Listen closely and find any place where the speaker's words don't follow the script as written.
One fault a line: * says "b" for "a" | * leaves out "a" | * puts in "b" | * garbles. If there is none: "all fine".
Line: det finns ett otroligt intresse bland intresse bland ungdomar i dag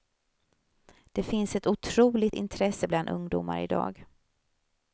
* leaves out "intresse bland"